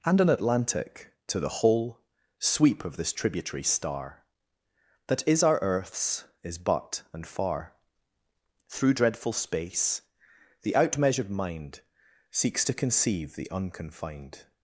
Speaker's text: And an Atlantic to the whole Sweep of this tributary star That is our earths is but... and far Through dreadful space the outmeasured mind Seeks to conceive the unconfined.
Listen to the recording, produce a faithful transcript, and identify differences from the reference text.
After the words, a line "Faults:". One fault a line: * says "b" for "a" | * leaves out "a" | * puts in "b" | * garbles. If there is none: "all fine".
And an Atlantic to the whole Sweep of this tributary star That is our earths is but... and far Through dreadful space the outmeasured mind Seeks to conceive the unconfined.
Faults:
all fine